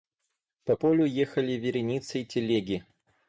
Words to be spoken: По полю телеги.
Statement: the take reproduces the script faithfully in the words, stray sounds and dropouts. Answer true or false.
false